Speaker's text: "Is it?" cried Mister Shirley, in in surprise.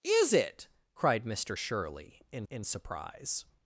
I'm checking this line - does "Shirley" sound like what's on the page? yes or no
yes